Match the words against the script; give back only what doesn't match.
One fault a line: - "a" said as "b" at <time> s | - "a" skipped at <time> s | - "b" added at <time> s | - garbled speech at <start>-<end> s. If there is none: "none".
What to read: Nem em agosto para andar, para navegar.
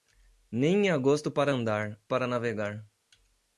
none